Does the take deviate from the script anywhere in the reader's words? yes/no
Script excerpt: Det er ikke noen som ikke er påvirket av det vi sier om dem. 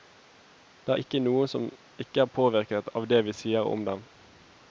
no